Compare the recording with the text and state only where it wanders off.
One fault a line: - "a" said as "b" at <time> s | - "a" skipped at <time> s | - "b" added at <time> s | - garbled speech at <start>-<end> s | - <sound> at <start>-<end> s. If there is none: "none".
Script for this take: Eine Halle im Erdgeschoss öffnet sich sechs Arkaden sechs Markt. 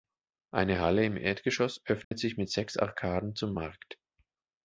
- dropout at 2.0-2.1 s
- "mit" added at 2.4 s
- "sechs" said as "zum" at 3.4 s